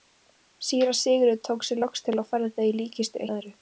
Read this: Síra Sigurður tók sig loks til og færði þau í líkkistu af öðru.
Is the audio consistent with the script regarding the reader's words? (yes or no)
yes